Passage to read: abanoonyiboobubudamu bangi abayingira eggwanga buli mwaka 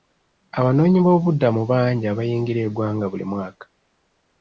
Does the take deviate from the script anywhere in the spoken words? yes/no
no